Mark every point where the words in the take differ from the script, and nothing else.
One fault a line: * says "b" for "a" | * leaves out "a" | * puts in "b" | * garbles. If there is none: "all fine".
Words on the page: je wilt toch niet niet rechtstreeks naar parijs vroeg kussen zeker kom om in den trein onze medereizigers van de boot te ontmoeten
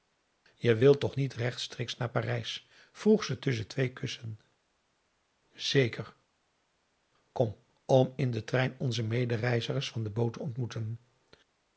* leaves out "niet"
* puts in "ze tusschen twee"